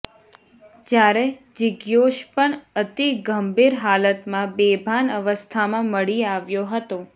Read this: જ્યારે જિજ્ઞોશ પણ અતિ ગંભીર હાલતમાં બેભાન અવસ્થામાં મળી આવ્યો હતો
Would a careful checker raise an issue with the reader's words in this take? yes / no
no